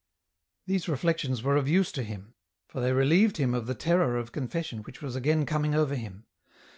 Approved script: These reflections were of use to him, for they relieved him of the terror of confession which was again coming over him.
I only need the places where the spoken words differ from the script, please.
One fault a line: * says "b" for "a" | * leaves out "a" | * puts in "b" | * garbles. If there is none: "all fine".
all fine